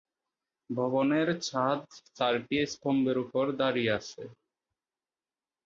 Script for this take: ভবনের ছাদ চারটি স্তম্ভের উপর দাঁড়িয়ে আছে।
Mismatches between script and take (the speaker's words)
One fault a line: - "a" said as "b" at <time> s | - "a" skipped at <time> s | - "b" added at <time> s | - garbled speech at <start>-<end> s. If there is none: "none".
none